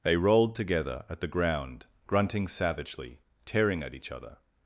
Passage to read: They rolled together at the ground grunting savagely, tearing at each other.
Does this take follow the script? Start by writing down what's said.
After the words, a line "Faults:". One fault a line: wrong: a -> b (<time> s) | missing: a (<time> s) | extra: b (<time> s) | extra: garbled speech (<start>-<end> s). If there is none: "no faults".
They rolled together at the ground grunting savagely, tearing at each other.
Faults:
no faults